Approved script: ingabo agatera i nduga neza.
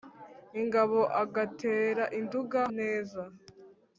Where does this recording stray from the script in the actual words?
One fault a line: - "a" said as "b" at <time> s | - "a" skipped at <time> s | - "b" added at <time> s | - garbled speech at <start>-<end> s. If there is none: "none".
none